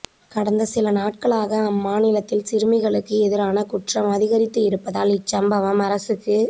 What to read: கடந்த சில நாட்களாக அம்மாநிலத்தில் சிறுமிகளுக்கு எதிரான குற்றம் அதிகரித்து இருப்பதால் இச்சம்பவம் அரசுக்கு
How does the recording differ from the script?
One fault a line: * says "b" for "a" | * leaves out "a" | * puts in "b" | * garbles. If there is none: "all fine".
all fine